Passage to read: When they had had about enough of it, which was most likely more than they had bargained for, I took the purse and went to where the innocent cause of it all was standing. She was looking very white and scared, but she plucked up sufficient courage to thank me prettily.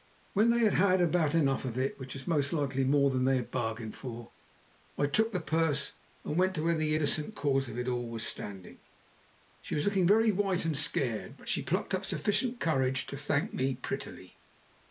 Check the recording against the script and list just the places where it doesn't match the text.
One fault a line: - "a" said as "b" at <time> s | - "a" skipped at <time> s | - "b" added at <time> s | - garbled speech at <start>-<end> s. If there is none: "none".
none